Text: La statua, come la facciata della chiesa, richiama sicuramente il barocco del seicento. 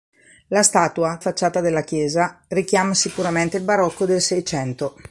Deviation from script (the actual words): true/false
true